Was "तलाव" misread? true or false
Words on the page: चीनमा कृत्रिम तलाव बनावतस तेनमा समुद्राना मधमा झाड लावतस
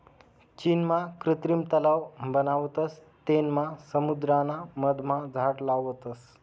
false